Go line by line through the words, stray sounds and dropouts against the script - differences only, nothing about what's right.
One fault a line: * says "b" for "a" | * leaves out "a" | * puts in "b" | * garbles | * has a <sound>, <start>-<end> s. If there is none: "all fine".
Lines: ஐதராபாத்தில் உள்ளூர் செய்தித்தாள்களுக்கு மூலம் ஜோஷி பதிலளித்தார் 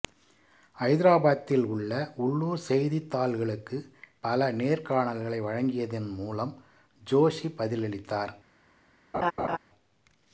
* puts in "உள்ள"
* puts in "பல நேர்காணல்களை வழங்கியதன்"
* has a laugh, 9.1-9.6 s